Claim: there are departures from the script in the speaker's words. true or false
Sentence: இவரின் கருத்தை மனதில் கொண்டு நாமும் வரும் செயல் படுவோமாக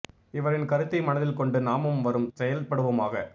false